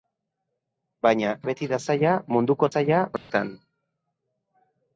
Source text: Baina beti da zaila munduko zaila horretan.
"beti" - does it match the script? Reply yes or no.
yes